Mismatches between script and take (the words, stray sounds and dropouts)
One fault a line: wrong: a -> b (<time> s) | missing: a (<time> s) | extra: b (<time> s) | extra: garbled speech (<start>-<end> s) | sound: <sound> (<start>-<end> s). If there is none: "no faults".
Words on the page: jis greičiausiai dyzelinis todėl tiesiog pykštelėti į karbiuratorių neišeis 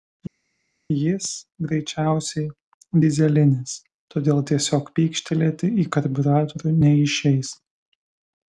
no faults